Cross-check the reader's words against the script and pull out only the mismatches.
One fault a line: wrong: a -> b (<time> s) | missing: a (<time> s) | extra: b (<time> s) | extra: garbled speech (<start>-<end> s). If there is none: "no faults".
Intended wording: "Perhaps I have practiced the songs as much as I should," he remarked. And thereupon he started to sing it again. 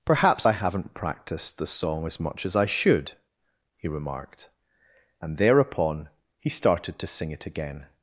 wrong: have -> haven't (0.5 s)
wrong: songs -> song (1.7 s)